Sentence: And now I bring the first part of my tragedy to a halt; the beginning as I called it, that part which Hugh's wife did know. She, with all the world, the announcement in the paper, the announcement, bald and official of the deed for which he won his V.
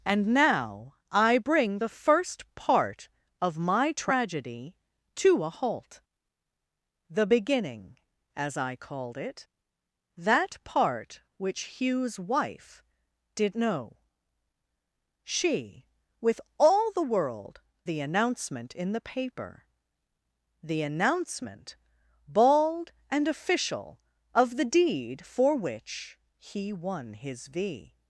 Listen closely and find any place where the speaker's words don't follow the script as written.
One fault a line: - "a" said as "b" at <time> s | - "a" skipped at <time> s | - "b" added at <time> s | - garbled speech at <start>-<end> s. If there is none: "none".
none